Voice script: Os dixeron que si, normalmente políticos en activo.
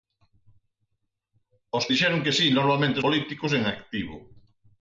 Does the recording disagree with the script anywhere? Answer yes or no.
no